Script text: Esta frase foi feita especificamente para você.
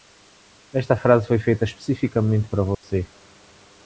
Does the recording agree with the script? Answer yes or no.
yes